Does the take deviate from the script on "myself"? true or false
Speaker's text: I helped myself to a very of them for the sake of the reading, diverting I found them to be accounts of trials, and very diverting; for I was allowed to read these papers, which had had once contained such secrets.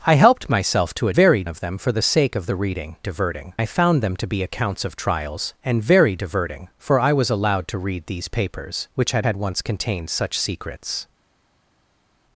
false